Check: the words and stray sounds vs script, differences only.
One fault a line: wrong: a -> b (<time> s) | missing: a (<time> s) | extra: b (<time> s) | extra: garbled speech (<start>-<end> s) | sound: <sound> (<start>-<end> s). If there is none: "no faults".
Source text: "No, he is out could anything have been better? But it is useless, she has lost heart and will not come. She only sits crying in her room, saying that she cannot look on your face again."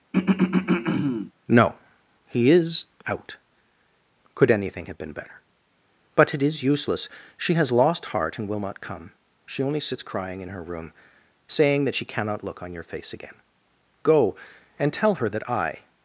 sound: throat clearing (0.1-1.3 s)
extra: Go and tell her that I (14.0 s)